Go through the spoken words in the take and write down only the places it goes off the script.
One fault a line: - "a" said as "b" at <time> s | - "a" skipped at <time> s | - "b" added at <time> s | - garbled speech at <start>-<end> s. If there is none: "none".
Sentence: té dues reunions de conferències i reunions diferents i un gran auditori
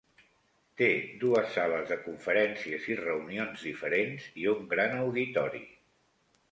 - "reunions" said as "sales" at 1.6 s